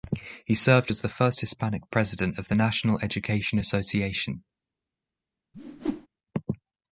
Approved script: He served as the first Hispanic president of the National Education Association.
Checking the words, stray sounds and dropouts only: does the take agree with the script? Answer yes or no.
no